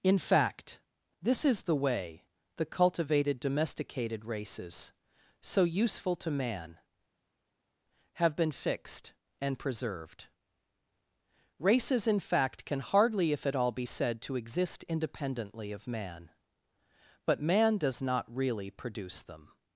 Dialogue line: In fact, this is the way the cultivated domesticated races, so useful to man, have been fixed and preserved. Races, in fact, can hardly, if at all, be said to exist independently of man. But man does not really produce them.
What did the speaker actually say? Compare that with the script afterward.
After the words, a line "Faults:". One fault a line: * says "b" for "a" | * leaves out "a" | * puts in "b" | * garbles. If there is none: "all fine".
In fact, this is the way the cultivated domesticated races, so useful to man, have been fixed and preserved. Races, in fact, can hardly, if at all, be said to exist independently of man. But man does not really produce them.
Faults:
all fine